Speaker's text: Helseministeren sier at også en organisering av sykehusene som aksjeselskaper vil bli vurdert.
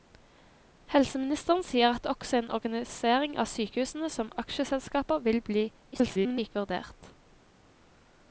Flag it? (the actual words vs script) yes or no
yes